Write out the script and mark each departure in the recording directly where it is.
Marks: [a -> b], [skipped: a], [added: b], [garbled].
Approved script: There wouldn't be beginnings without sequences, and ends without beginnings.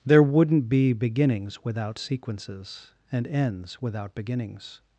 There wouldn't be beginnings without sequences, and ends without beginnings.